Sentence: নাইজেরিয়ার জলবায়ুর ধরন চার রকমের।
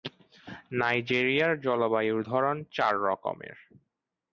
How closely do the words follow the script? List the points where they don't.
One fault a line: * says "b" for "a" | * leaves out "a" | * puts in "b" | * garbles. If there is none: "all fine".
all fine